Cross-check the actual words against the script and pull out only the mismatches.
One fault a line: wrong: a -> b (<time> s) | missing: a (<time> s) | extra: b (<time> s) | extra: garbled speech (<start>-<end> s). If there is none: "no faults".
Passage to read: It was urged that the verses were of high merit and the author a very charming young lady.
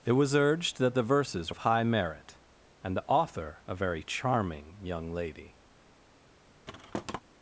missing: were (1.5 s)